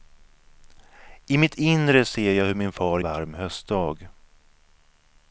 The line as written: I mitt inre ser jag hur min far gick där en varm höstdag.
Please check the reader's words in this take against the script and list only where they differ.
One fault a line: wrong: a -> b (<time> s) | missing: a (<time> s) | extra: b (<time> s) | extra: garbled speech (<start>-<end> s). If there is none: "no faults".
missing: gick där en (3.0 s)